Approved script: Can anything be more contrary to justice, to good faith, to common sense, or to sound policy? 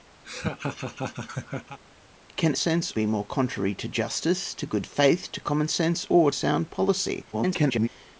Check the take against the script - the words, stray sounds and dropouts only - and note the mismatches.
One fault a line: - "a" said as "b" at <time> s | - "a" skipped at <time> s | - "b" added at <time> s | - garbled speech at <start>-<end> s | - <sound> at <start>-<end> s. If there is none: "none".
- laugh at 0.2-1.8 s
- "anything" said as "sense" at 2.5 s
- "to" skipped at 6.3 s
- garbled speech at 7.3-7.9 s